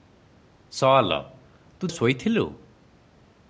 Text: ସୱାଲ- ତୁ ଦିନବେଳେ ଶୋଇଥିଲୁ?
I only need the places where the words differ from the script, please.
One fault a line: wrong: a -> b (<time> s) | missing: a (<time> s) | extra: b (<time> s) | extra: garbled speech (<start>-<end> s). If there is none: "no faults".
missing: ଦିନବେଳେ (1.9 s)